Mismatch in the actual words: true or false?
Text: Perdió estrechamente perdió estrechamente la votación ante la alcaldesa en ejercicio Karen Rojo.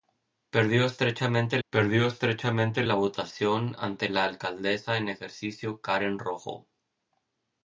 false